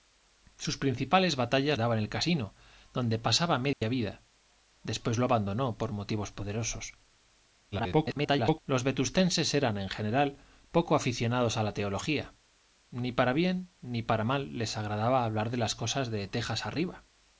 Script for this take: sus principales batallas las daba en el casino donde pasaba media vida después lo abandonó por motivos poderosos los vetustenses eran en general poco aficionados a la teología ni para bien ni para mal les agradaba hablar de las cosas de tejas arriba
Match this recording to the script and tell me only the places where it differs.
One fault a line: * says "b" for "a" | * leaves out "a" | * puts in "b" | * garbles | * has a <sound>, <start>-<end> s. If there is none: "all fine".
* leaves out "las"
* has a dropout, 3.7-3.8 s
* garbles